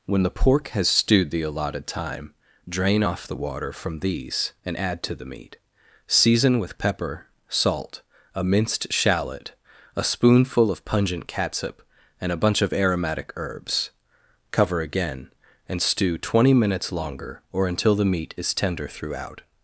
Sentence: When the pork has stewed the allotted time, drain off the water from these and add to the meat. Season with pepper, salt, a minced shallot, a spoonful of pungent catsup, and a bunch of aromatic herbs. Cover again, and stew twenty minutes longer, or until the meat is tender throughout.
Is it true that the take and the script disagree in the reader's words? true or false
false